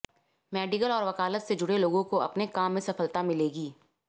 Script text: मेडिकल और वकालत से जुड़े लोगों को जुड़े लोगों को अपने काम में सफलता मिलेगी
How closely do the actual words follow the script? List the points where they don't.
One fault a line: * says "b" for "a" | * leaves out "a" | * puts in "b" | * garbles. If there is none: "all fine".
* leaves out "जुड़े लोगों को"